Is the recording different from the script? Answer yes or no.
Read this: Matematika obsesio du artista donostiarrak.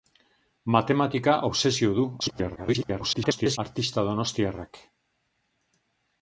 yes